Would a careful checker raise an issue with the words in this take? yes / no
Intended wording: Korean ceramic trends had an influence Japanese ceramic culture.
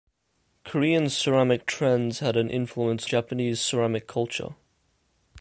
no